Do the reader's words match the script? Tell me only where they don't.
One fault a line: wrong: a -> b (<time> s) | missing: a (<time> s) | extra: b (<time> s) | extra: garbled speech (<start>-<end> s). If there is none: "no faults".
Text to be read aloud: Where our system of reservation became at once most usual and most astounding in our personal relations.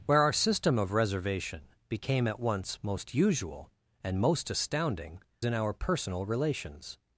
no faults